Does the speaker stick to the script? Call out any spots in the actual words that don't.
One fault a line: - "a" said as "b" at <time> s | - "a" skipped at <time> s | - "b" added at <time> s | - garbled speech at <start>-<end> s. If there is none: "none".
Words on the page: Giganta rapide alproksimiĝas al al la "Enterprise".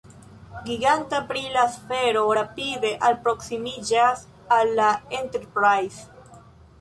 - "brila sfero" added at 1.3 s
- "al" skipped at 4.7 s